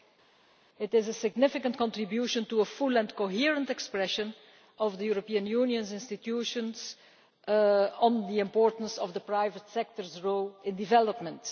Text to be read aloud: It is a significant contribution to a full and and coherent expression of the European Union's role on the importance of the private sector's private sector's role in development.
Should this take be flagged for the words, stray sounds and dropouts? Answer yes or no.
yes